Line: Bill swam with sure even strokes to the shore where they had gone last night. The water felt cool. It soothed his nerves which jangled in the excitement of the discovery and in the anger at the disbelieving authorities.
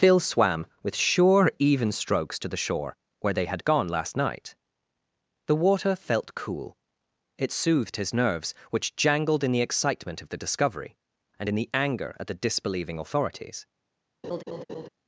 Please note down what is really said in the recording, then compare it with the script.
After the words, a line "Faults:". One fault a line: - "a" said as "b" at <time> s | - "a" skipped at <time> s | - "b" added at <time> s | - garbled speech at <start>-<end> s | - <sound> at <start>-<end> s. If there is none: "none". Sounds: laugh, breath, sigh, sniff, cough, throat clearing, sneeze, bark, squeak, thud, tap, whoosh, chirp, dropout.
Phil swam with sure even strokes to the shore where they had gone last night. The water felt cool. It soothed his nerves which jangled in the excitement of the discovery and in the anger at the disbelieving authorities.
Faults:
- "Bill" said as "Phil" at 0.0 s
- laugh at 14.2-14.9 s